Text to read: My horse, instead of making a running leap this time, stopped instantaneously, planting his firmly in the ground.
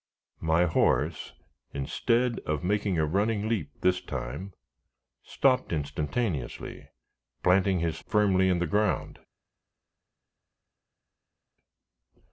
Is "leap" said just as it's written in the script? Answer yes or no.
yes